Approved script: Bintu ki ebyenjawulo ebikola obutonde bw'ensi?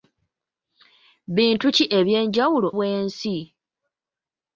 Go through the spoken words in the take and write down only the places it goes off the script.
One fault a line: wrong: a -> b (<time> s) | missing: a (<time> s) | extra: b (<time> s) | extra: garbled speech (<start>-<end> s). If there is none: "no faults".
missing: ebikola obutonde (2.7 s)